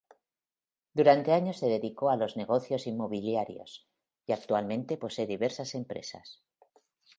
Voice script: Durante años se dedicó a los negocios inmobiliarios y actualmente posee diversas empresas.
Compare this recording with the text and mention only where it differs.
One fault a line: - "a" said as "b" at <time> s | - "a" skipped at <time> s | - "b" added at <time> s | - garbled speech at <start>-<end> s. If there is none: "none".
none